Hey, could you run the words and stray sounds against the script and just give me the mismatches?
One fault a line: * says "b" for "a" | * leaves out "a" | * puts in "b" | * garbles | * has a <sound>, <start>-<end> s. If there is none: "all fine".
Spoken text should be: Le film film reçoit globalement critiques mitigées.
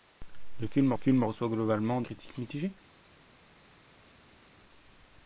all fine